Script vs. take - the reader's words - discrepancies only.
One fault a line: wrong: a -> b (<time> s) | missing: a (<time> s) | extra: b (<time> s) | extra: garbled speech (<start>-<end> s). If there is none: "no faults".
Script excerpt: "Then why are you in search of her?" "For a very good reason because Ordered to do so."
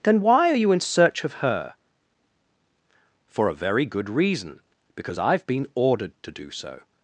extra: I've been (5.2 s)